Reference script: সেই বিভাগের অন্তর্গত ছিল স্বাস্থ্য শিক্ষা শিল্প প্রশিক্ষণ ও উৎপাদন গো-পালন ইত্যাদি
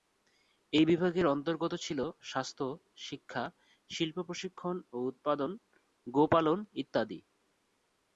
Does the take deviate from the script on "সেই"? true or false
true